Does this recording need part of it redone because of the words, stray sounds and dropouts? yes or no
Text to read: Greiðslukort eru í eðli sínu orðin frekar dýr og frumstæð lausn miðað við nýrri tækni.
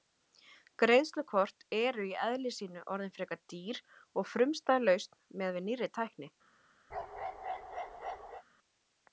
yes